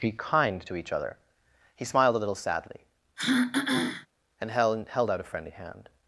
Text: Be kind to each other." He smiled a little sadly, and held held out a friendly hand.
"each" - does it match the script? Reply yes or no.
yes